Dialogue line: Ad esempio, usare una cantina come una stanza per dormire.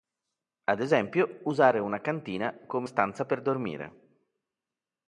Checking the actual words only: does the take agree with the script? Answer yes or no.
no